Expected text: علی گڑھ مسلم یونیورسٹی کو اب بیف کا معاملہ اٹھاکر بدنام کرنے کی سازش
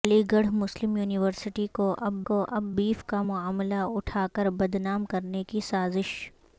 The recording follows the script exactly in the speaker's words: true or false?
false